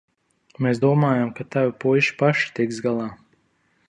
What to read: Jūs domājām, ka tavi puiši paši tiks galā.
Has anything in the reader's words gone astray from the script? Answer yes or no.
yes